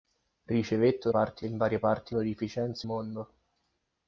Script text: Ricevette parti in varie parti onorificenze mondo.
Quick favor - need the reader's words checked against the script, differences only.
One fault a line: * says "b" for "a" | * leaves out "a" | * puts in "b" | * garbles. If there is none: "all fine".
all fine